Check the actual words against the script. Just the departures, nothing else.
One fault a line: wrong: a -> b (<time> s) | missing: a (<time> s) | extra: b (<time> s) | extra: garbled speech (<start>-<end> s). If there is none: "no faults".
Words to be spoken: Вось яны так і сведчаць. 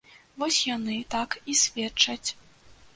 no faults